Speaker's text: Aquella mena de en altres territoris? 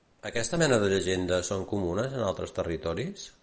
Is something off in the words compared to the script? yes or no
yes